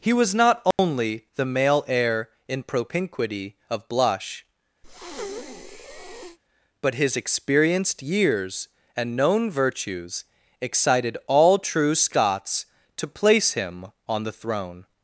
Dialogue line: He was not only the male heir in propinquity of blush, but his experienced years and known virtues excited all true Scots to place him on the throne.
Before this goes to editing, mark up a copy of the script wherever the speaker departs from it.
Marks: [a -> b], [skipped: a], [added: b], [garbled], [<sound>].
He was not only [dropout] the male heir in propinquity of blush, [breath] but his experienced years and known virtues excited all true Scots to place him on the throne.